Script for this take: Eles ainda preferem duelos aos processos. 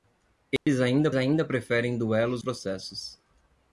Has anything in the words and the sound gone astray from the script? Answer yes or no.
yes